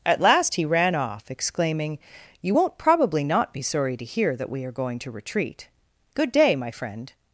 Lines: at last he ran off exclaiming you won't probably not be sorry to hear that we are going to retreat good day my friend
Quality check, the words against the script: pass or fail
pass